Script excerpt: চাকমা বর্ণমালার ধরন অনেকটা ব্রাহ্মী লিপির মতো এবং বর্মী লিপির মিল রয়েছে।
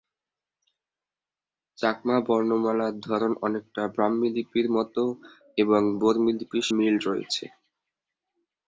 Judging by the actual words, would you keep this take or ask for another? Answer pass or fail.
pass